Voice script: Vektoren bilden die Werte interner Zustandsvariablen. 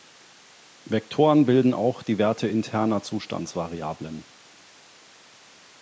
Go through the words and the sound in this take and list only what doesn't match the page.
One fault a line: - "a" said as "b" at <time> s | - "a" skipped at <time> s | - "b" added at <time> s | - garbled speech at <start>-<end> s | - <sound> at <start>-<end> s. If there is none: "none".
- "auch" added at 1.8 s